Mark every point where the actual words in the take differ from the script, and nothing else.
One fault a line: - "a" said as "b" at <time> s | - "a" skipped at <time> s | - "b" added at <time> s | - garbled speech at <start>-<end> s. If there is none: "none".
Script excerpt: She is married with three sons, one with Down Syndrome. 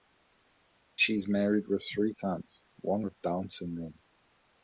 none